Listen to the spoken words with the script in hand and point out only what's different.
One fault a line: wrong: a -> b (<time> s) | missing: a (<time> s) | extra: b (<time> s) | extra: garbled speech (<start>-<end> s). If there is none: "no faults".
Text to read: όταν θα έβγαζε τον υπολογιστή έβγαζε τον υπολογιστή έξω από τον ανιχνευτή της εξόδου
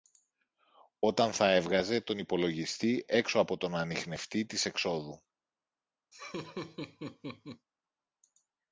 missing: έβγαζε τον υπολογιστή (3.0 s)